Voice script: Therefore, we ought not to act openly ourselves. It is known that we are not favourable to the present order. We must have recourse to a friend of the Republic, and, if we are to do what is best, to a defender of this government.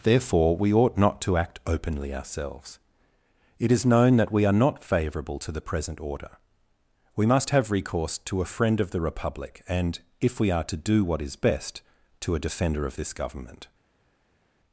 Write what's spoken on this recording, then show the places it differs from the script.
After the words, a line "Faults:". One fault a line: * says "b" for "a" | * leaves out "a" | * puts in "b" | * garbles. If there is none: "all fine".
Therefore, we ought not to act openly ourselves. It is known that we are not favourable to the present order. We must have recourse to a friend of the Republic, and, if we are to do what is best, to a defender of this government.
Faults:
all fine